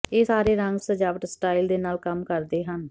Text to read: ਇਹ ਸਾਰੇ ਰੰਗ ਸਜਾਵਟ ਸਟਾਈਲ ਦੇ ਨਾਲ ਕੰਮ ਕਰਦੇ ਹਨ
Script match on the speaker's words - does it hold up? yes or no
yes